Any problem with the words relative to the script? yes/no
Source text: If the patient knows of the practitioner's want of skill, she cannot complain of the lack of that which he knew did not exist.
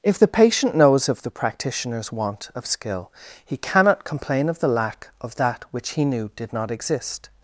yes